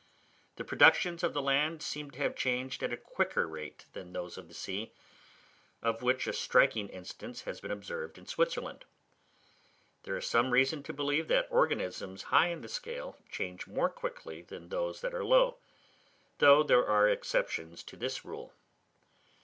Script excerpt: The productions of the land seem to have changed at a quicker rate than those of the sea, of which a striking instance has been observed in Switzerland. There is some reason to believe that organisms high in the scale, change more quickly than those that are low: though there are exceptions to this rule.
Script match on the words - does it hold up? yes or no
yes